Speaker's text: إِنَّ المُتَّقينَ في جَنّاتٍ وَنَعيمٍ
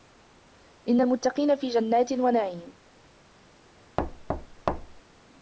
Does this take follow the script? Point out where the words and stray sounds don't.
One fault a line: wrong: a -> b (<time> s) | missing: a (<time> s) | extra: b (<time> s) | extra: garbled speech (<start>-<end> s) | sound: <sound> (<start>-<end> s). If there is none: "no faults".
sound: thud (4.0-5.0 s)